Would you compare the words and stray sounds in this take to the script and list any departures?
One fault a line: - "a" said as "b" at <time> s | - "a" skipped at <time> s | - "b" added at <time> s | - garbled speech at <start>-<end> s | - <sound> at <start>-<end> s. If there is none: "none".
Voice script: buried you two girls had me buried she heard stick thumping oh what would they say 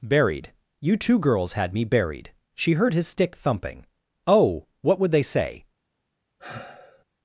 - "his" added at 3.0 s
- sigh at 6.4-7.0 s